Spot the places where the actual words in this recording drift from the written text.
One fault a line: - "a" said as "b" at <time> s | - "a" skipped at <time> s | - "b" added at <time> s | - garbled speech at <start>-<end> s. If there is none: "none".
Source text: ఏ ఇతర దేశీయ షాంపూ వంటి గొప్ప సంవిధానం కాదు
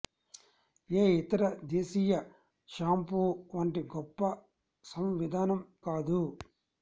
none